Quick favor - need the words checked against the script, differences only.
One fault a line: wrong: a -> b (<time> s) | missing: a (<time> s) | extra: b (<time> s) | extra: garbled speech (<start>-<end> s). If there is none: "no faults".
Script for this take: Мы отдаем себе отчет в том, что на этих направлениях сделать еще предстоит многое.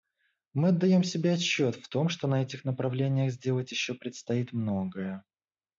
no faults